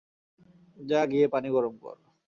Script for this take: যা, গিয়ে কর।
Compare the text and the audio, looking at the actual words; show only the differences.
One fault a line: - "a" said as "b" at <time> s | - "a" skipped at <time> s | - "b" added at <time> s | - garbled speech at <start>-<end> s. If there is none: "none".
- "পানি গরম" added at 1.3 s